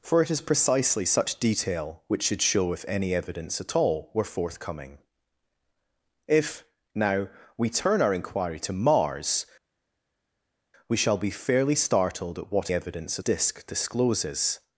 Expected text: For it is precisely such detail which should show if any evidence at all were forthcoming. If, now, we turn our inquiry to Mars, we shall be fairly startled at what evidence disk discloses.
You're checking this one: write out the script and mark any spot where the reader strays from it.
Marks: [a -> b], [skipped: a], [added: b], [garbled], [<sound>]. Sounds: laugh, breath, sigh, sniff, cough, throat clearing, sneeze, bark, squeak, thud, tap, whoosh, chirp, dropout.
For it is precisely such detail which should show if any evidence at all were forthcoming. If, now, we turn our inquiry to Mars, we shall be fairly startled at what evidence disk discloses.